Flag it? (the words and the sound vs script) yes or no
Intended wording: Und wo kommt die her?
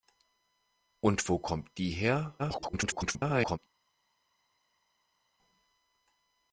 yes